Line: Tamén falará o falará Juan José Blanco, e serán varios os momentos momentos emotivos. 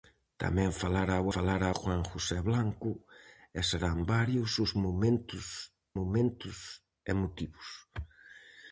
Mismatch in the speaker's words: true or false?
false